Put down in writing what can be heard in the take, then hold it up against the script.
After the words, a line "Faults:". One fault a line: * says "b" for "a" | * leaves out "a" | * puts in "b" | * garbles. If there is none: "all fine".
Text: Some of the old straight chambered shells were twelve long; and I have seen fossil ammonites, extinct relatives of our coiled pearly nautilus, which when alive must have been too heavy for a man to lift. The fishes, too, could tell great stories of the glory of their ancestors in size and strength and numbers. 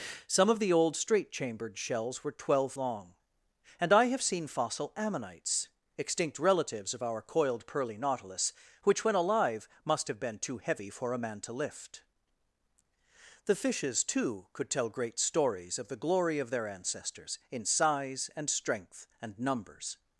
Some of the old straight chambered shells were twelve long; and I have seen fossil ammonites, extinct relatives of our coiled pearly nautilus, which when alive must have been too heavy for a man to lift. The fishes, too, could tell great stories of the glory of their ancestors in size and strength and numbers.
Faults:
all fine